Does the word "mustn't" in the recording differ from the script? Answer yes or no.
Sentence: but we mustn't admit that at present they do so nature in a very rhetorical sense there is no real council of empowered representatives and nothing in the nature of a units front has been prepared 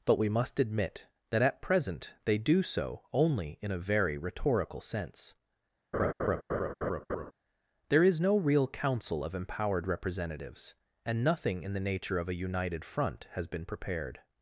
yes